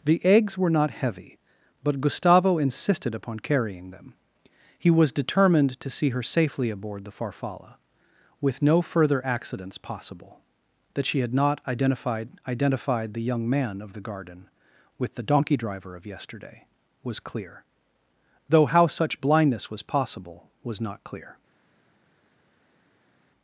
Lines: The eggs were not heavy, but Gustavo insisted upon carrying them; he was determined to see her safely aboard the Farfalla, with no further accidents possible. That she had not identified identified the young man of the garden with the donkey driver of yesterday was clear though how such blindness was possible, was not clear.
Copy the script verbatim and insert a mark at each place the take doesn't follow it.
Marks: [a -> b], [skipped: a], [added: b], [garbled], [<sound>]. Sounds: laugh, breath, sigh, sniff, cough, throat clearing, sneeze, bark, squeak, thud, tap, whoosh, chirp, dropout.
The eggs were not heavy, but Gustavo insisted upon carrying them; he was determined to see her safely aboard the Farfalla, with no further accidents possible. That she had not identified identified the young man of the garden with the donkey driver of yesterday was clear though how such blindness was possible, was not clear.